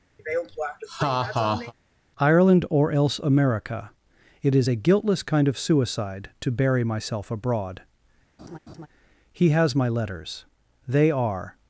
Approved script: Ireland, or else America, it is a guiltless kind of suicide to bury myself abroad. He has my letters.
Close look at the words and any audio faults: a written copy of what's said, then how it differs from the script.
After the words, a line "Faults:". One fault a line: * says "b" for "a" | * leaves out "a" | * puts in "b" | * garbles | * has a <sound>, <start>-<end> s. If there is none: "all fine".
Ireland, or else America, it is a guiltless kind of suicide to bury myself abroad. He has my letters. They are
Faults:
* has a laugh, 0.2-1.7 s
* has a laugh, 8.4-8.9 s
* puts in "They are"